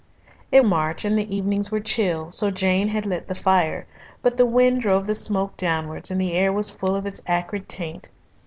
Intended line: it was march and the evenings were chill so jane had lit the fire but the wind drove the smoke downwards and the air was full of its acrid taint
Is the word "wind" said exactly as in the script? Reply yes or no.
yes